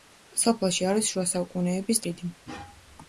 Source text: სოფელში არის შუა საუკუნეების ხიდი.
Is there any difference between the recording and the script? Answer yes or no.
no